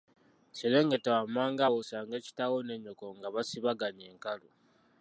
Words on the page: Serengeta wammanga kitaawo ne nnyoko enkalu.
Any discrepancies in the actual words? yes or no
yes